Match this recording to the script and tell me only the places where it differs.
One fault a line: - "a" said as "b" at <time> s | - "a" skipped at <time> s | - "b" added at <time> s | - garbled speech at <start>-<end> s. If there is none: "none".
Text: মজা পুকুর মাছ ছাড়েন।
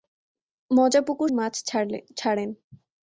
none